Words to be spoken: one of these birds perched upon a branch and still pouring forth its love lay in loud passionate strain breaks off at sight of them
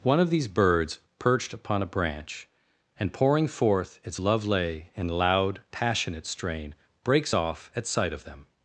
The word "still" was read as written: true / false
false